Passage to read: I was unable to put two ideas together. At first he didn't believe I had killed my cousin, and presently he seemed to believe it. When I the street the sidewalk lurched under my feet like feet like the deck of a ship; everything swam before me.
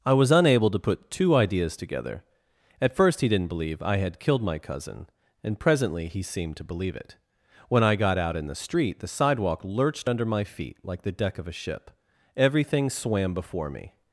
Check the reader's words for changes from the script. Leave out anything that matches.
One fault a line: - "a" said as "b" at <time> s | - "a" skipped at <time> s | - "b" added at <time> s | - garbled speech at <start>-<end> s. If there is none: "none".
- "got out in" added at 8.0 s
- "feet like" skipped at 11.0 s